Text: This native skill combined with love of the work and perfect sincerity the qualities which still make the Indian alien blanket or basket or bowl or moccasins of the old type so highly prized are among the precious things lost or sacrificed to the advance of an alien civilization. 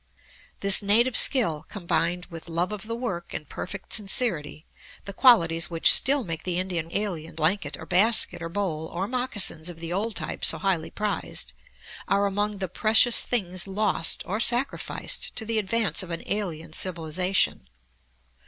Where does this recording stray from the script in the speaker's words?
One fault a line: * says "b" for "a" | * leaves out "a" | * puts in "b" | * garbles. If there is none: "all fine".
all fine